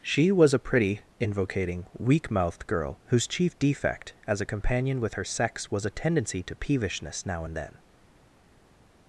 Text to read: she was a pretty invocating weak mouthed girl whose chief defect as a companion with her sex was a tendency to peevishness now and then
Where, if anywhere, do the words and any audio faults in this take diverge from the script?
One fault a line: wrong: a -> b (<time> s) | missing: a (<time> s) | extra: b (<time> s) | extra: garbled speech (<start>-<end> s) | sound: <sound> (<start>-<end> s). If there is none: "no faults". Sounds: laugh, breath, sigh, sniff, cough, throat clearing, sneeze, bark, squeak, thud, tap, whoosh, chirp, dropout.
no faults